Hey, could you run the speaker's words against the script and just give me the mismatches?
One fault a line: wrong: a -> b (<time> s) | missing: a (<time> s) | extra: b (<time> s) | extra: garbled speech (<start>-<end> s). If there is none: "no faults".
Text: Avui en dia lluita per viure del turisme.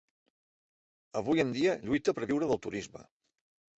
no faults